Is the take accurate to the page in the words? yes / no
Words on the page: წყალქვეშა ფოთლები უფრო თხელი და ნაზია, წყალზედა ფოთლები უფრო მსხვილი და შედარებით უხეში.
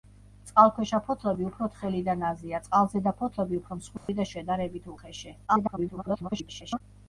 no